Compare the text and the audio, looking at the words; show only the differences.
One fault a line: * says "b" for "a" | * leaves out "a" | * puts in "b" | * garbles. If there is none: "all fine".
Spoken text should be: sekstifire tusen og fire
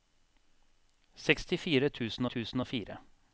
* puts in "tusen"